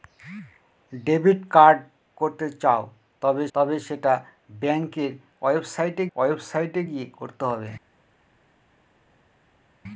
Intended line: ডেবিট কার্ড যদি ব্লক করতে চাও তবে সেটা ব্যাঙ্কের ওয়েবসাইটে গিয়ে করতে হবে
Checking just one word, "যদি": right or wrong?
wrong